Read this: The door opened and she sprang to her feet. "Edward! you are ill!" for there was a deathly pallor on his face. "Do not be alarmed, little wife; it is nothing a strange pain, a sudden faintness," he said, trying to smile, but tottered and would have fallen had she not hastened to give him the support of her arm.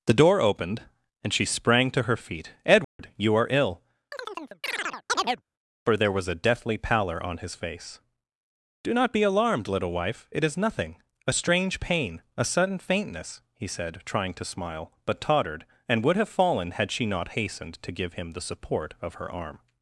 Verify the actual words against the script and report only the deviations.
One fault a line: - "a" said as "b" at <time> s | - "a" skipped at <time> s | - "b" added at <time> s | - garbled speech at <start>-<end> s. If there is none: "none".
none